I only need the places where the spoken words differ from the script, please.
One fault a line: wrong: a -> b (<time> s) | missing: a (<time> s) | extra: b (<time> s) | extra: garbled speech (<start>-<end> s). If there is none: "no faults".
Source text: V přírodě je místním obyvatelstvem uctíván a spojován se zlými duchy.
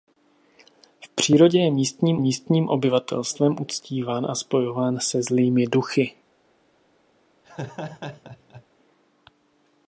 extra: místním (2.2 s)